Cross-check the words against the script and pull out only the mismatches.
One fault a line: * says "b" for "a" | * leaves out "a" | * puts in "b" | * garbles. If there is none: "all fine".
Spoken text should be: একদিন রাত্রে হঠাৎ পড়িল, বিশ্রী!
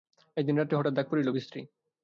* puts in "ডাক"